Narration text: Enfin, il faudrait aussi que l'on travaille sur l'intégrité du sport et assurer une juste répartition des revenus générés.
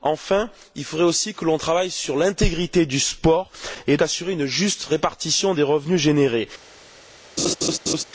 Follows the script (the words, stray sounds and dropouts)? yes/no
no